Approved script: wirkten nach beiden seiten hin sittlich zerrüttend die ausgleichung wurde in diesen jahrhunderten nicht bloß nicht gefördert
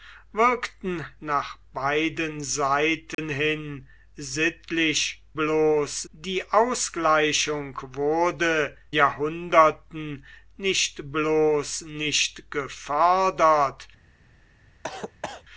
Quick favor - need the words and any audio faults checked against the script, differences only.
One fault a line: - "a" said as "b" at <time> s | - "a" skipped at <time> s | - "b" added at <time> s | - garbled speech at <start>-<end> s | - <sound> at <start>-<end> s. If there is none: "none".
- dropout at 3.1-3.2 s
- "zerrüttend" said as "bloß" at 5.3 s
- "in diesen" skipped at 8.8 s
- cough at 14.8-15.4 s